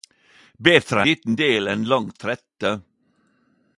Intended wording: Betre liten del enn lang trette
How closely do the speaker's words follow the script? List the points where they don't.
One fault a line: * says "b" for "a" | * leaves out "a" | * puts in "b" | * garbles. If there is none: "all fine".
all fine